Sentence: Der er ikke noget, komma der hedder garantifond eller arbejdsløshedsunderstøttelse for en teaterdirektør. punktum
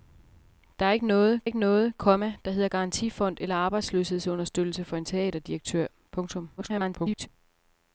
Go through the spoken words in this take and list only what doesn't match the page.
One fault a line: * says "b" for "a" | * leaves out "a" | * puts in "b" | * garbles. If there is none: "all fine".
* puts in "ikke noget"
* garbles